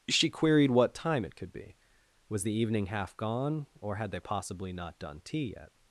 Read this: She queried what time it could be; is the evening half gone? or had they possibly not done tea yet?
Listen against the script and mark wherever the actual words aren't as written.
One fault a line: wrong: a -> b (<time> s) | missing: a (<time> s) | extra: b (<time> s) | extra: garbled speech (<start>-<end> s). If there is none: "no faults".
wrong: is -> was (2.3 s)